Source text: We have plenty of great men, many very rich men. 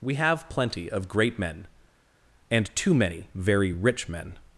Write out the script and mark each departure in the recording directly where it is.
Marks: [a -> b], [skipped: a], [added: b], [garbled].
We have plenty of great men, [added: and too] many very rich men.